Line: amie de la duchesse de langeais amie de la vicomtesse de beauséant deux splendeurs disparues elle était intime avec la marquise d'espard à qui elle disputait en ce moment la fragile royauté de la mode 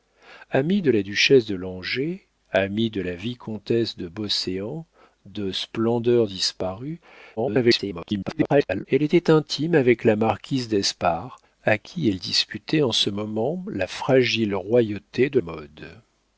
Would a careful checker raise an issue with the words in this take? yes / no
yes